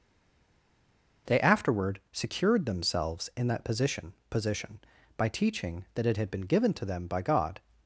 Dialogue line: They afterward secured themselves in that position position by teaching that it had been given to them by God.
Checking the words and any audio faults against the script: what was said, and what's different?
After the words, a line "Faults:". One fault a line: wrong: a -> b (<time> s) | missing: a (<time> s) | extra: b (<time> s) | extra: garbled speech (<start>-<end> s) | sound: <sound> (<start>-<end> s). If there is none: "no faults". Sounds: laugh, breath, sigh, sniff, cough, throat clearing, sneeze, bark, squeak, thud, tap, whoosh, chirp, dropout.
They afterward secured themselves in that position position by teaching that it had been given to them by God.
Faults:
no faults